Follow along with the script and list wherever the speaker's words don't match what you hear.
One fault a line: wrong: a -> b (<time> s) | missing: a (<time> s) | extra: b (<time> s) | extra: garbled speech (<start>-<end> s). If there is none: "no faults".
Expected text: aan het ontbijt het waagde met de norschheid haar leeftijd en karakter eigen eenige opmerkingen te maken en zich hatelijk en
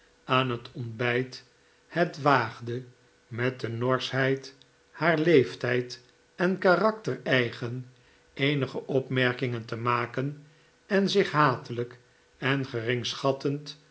no faults